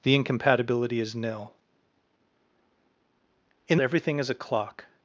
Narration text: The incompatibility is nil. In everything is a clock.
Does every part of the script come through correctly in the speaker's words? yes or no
yes